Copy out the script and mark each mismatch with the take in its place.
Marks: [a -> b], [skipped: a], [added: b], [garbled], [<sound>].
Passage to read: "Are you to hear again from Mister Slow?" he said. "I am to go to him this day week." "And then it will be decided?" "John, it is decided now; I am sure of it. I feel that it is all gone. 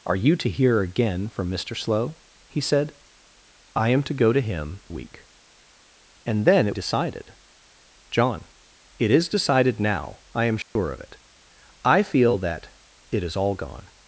"Are you to hear again from Mister Slow?" he said. "I am to go to him [skipped: this day] week." "And then it [skipped: will be] decided?" "John, it is decided now; I am sure [dropout] of it. I feel that it is all gone.